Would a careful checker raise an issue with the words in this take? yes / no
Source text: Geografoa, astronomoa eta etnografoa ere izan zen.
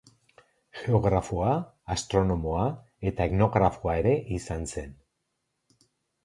no